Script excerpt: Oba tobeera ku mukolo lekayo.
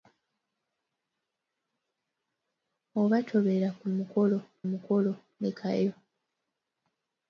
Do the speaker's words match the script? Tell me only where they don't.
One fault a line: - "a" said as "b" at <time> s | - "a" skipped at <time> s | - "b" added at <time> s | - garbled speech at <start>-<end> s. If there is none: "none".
- "mukolo" added at 4.7 s